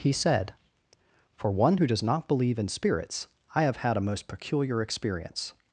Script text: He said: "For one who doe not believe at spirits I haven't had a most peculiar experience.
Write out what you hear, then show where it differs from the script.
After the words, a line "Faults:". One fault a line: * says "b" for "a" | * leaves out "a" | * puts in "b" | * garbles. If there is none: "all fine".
He said: "For one who does not believe in spirits I have had a most peculiar experience.
Faults:
* says "does" for "doe"
* says "in" for "at"
* says "have" for "haven't"